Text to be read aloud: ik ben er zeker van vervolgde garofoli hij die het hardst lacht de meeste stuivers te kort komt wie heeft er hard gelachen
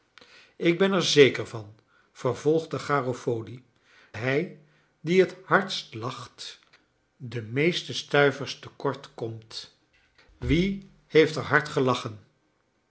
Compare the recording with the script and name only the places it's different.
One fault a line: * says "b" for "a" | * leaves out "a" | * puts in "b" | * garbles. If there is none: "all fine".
all fine